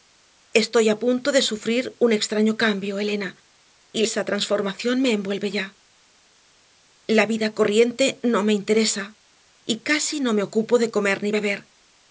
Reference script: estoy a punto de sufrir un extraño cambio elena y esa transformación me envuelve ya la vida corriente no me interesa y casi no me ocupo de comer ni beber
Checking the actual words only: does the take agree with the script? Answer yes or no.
yes